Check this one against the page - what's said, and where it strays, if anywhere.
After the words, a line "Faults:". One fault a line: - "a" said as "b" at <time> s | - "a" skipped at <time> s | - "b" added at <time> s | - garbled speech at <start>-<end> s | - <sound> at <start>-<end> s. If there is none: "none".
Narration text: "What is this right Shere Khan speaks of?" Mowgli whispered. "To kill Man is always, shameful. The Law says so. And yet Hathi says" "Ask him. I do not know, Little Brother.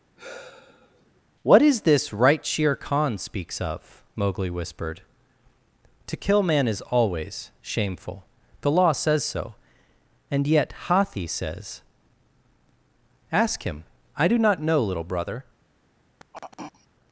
"What is this right Shere Khan speaks of?" Mowgli whispered. "To kill Man is always, shameful. The Law says so. And yet Hathi says" "Ask him. I do not know, Little Brother.
Faults:
- sigh at 0.2-1.2 s
- throat clearing at 16.2-16.9 s